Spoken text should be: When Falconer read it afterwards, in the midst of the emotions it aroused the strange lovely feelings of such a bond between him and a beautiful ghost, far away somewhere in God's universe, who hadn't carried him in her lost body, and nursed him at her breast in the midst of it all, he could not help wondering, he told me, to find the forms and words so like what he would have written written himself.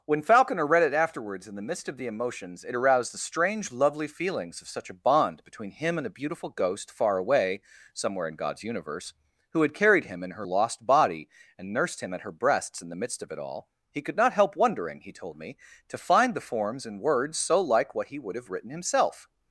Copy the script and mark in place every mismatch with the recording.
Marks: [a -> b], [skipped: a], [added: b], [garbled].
When Falconer read it afterwards, in the midst of the emotions it aroused the strange lovely feelings of such a bond between him and a beautiful ghost, far away somewhere in God's universe, who [hadn't -> had] carried him in her lost body, and nursed him at her [breast -> breasts] in the midst of it all, he could not help wondering, he told me, to find the forms and words so like what he would have written [skipped: written] himself.